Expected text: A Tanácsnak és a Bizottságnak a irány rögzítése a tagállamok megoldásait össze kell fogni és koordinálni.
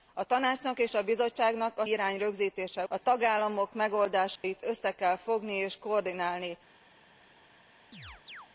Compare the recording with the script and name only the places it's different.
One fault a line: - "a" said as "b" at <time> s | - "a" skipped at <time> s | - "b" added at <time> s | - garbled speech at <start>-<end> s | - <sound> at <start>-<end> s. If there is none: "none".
- dropout at 4.4-4.4 s
- chirp at 7.9-8.5 s